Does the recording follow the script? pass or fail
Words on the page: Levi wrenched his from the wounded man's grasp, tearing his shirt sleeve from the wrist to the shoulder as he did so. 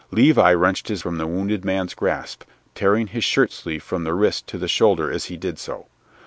pass